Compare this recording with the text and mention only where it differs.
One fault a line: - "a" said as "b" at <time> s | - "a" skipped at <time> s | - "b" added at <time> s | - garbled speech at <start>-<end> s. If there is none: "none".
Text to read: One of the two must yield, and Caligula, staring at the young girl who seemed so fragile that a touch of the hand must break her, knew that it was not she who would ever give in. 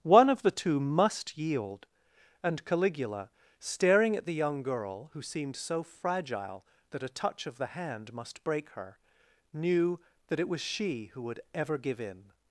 - "not" skipped at 10.6 s